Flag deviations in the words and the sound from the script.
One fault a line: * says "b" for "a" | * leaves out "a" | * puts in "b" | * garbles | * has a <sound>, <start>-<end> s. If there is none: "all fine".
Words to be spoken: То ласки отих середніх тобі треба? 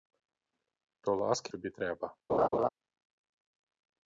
* leaves out "отих середніх"
* has a laugh, 2.3-2.7 s